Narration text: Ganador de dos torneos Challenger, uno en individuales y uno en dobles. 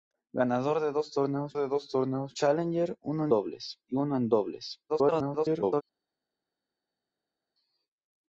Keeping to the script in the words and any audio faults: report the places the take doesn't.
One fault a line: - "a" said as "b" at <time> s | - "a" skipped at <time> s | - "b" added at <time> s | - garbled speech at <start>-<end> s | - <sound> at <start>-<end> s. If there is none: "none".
- "de dos torneos" added at 1.5 s
- "individuales" said as "dobles" at 3.3 s
- garbled speech at 4.9-5.8 s